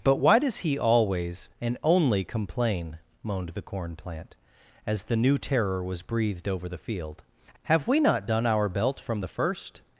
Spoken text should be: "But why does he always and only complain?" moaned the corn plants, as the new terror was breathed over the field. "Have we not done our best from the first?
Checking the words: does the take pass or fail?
fail